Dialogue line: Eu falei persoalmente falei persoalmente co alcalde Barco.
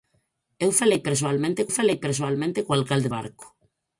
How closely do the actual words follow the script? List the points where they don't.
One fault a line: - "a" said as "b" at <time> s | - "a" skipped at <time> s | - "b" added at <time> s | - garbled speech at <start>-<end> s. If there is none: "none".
none